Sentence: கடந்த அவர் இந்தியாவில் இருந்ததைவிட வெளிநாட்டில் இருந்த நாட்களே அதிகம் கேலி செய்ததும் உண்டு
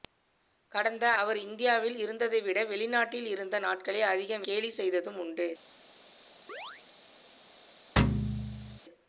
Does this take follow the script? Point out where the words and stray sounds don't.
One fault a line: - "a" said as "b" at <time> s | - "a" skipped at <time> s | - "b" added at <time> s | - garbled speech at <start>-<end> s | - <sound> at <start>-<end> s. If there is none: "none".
- chirp at 6.5-6.8 s
- thud at 8.0-8.8 s